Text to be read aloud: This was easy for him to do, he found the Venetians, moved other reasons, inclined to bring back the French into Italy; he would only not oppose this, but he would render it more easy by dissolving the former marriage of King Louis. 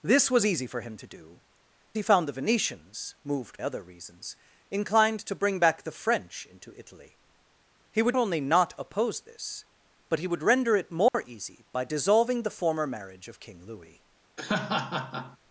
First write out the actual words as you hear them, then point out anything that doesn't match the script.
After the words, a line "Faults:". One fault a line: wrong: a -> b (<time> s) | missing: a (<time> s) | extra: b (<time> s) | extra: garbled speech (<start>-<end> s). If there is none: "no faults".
This was easy for him to do, he found the Venetians, moved other reasons, inclined to bring back the French into Italy; he would only not oppose this, but he would render it more easy by dissolving the former marriage of King Louis.
Faults:
no faults